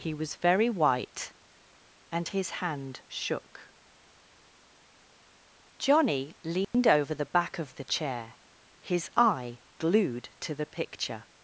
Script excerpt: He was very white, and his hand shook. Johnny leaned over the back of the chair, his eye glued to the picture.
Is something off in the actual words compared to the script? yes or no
no